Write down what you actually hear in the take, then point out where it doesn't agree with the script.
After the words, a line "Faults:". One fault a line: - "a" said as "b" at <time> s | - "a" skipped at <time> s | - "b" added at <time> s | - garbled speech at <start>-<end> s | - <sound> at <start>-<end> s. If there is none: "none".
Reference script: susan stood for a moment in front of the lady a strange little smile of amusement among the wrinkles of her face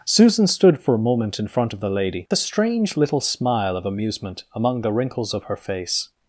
susan stood for a moment in front of the lady a strange little smile of amusement among the wrinkles of her face
Faults:
none